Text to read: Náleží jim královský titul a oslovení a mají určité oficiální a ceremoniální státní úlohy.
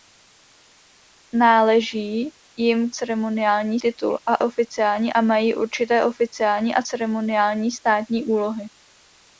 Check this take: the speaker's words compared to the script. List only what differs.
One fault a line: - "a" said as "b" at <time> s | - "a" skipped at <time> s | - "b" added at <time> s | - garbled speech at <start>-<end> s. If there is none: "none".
- "královský" said as "ceremoniální" at 2.9 s
- "oslovení" said as "oficiální" at 4.4 s